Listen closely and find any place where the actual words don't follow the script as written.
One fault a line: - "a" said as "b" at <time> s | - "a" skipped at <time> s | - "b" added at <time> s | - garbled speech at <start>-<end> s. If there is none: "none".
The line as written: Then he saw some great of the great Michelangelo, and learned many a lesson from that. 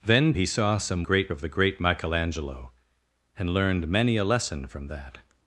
none